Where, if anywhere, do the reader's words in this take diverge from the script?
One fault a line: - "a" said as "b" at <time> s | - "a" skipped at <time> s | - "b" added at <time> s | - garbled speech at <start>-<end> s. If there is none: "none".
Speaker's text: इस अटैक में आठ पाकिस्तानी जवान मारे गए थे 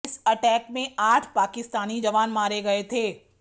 none